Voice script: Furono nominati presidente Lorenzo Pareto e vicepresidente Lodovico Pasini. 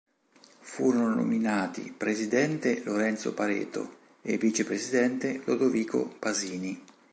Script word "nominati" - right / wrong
right